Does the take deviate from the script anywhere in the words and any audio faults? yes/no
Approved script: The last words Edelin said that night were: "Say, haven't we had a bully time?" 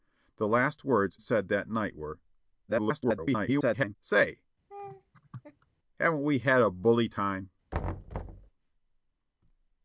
yes